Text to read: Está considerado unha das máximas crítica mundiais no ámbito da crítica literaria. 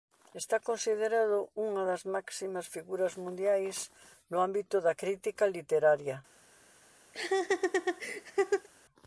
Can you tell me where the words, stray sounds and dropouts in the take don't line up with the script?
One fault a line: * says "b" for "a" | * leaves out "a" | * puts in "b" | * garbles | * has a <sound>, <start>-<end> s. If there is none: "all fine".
* says "figuras" for "crítica"
* has a laugh, 7.1-8.7 s